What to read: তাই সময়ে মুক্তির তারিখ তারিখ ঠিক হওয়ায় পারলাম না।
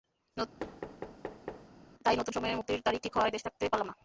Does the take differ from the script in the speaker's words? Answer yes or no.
yes